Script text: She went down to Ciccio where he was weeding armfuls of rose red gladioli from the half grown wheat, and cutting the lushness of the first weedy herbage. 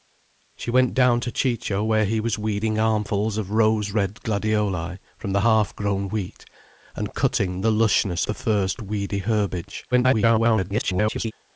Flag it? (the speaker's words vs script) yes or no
yes